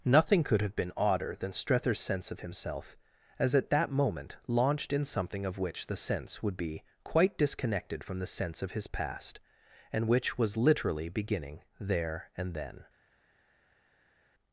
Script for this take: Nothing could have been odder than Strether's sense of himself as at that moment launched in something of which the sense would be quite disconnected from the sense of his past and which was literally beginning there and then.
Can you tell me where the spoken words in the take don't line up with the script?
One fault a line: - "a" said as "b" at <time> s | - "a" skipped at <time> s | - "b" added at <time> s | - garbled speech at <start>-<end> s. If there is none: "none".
none